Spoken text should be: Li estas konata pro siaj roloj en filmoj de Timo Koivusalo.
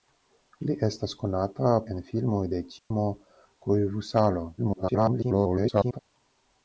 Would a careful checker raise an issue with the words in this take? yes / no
yes